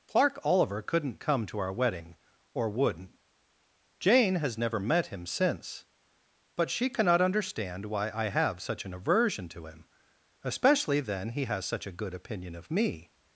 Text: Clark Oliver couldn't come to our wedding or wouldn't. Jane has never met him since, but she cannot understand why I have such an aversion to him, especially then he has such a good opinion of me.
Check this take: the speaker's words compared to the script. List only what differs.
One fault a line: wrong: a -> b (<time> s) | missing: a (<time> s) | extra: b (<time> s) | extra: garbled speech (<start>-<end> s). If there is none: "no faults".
no faults